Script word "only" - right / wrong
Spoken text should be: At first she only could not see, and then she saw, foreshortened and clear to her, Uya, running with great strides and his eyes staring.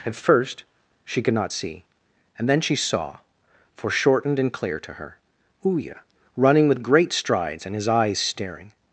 wrong